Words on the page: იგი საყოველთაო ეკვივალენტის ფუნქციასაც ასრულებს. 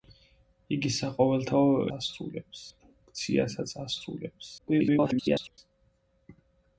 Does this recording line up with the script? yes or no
no